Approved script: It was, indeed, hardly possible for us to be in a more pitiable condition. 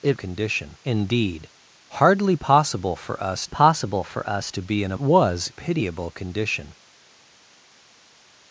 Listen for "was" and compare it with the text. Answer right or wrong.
wrong